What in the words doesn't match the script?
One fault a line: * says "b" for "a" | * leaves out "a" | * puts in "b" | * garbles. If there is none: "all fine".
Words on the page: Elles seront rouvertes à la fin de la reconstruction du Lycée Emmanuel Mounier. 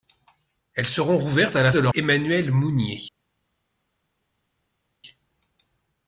* leaves out "fin"
* leaves out "reconstruction du Lycée"